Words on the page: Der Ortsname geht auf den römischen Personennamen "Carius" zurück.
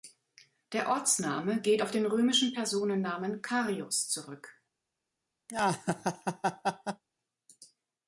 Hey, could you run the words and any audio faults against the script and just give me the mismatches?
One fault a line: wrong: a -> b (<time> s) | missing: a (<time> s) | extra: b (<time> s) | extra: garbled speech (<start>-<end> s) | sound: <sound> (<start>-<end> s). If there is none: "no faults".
sound: laugh (5.5-7.0 s)